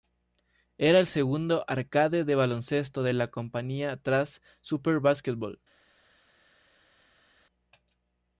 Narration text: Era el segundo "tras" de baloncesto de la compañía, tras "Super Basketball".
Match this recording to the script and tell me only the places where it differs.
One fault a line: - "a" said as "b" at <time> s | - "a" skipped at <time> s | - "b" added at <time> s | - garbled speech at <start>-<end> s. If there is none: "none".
- "tras" said as "arcade" at 1.7 s